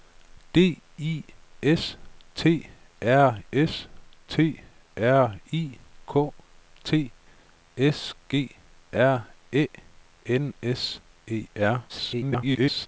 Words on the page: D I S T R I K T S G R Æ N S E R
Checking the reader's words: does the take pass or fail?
fail